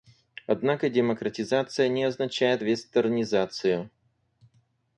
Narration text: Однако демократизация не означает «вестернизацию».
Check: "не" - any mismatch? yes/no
no